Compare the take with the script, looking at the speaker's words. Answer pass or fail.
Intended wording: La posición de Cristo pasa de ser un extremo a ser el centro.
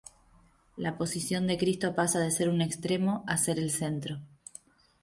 pass